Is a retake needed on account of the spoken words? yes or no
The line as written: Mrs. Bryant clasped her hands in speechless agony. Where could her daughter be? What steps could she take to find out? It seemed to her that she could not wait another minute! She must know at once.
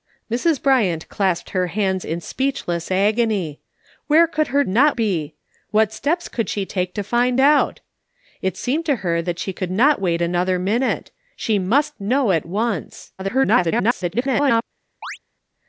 yes